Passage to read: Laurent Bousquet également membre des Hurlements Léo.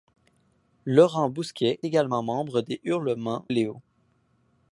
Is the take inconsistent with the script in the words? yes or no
no